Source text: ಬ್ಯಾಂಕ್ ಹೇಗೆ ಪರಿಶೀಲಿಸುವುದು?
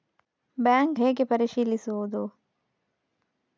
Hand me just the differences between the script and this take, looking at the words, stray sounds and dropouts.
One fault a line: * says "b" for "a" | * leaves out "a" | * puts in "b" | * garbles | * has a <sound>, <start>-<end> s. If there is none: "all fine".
all fine